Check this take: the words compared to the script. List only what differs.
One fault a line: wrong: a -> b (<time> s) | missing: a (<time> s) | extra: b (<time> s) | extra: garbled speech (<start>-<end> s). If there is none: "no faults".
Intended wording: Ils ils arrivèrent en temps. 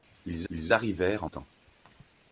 no faults